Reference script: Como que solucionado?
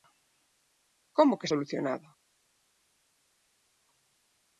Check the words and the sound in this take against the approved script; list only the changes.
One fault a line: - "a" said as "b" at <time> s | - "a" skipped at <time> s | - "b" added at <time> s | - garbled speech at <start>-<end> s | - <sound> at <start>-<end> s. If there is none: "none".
none